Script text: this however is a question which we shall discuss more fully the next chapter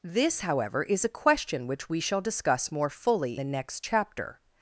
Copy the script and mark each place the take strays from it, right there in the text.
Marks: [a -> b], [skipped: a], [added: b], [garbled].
this however is a question which we shall discuss more fully the next chapter